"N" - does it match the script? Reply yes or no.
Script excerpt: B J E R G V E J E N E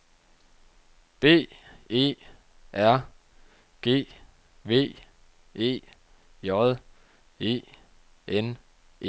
yes